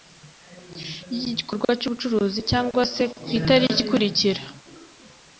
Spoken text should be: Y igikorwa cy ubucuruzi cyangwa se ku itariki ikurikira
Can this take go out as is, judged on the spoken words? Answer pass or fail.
pass